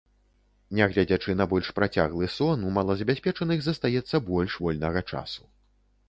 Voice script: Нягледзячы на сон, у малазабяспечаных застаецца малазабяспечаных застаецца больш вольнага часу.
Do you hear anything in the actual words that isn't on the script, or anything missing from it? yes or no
yes